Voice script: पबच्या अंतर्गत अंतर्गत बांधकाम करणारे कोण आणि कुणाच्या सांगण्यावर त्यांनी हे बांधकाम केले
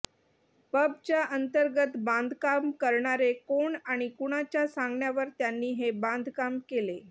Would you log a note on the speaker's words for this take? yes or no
yes